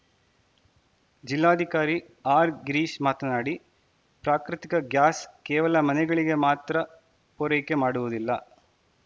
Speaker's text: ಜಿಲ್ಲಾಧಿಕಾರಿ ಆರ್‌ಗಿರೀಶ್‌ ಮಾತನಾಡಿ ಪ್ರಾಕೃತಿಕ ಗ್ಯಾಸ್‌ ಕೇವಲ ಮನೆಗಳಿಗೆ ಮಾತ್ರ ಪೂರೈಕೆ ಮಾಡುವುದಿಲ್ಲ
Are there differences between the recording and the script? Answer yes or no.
no